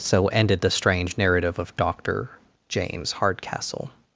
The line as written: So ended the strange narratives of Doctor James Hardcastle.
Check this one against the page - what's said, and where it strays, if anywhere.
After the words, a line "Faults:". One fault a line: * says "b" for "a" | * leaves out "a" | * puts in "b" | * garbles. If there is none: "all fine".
So ended the strange narrative of Doctor James Hardcastle.
Faults:
* says "narrative" for "narratives"